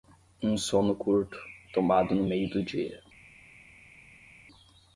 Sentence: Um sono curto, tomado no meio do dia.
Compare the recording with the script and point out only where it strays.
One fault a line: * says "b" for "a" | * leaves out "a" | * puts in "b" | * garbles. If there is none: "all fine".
all fine